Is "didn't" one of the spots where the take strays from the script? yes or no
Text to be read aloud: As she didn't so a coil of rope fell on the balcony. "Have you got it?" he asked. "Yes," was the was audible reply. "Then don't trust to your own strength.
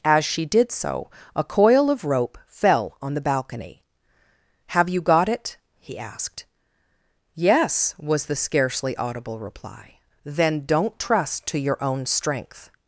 yes